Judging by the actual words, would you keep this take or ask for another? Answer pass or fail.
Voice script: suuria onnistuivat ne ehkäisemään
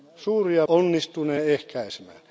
pass